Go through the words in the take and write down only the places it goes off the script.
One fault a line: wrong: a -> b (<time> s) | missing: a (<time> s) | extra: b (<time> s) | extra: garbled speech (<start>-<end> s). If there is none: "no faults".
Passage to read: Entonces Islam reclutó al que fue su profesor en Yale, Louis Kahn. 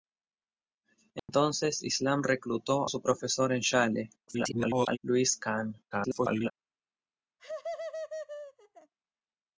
missing: al que fue (2.9 s)
extra: garbled speech (4.3-5.0 s)
extra: garbled speech (5.9-6.5 s)